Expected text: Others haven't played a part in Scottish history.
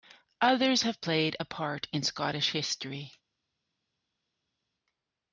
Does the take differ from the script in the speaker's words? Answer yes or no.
yes